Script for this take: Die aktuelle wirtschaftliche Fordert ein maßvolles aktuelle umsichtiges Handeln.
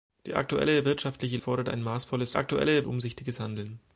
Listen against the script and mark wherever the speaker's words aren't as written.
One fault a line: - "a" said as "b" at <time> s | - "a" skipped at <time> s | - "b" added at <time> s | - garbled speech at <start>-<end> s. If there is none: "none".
none